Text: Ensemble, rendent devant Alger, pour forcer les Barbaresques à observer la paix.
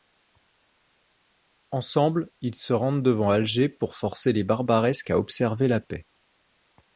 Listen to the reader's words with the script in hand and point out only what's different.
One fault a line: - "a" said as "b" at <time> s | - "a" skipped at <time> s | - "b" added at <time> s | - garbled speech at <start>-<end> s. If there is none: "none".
- "ils se" added at 2.4 s